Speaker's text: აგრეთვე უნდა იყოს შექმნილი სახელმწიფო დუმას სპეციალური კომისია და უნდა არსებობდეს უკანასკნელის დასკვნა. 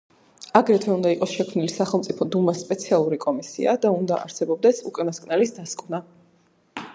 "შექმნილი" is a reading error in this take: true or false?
false